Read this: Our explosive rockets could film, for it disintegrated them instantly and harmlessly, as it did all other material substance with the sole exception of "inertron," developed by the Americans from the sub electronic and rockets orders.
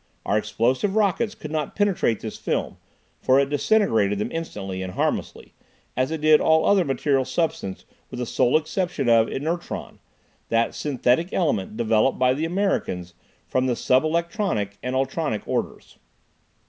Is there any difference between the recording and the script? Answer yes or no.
yes